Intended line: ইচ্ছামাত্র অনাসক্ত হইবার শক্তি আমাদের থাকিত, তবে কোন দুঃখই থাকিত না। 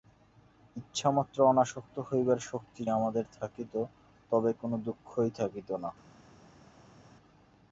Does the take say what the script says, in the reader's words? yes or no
yes